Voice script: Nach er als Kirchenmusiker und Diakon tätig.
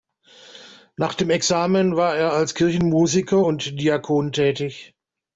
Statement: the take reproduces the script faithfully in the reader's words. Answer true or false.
false